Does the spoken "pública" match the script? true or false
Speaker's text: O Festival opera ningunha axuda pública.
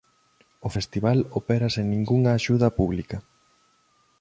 true